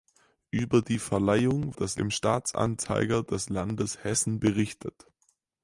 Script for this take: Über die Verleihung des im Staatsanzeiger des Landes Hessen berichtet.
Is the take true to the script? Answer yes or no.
yes